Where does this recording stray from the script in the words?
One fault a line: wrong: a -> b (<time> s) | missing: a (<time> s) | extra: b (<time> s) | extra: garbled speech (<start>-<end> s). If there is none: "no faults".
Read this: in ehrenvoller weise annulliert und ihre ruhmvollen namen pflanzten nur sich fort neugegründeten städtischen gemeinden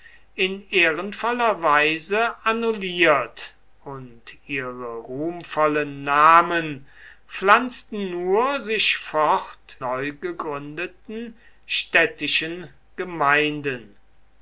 no faults